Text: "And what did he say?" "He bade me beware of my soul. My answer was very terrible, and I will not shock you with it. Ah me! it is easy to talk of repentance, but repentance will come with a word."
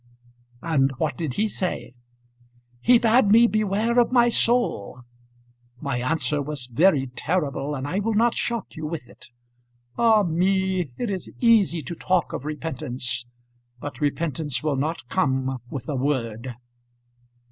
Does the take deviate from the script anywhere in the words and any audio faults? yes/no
yes